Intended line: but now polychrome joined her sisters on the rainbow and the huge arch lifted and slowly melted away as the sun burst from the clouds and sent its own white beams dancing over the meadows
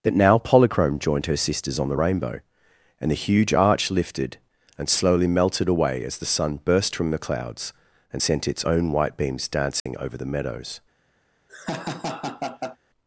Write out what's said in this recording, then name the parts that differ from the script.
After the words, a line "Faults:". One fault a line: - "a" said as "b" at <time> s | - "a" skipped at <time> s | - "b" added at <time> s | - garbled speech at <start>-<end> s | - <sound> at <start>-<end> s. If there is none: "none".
that now polychrome joined her sisters on the rainbow and the huge arch lifted and slowly melted away as the sun burst from the clouds and sent its own white beams dancing over the meadows
Faults:
- "but" said as "that" at 0.0 s
- dropout at 9.8-9.9 s
- laugh at 11.5-12.8 s